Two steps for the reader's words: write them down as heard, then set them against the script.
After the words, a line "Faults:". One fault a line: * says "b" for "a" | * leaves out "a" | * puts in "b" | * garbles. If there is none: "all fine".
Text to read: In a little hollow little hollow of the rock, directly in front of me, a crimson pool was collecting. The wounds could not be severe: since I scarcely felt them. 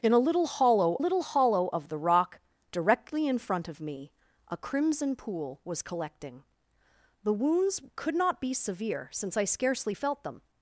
In a little hollow little hollow of the rock, directly in front of me, a crimson pool was collecting. The wounds could not be severe: since I scarcely felt them.
Faults:
all fine